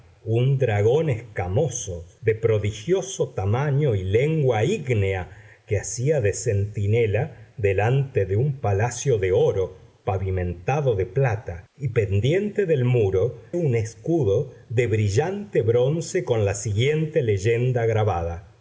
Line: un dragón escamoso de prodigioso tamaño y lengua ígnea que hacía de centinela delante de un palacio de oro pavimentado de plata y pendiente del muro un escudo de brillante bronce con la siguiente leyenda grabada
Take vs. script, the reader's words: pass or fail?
pass